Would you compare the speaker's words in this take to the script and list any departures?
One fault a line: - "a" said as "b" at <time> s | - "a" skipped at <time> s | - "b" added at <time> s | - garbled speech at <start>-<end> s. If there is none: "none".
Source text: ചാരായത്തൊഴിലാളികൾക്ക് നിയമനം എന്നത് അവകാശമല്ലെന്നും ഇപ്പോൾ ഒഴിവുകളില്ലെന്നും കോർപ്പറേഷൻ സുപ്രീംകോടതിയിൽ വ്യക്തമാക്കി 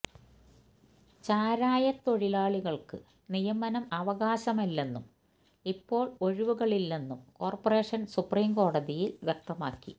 - "എന്നത്" skipped at 3.9 s